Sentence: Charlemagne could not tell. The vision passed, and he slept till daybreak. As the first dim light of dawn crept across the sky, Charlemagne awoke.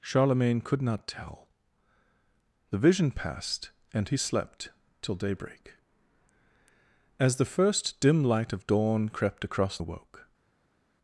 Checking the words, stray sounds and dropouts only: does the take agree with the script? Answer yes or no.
no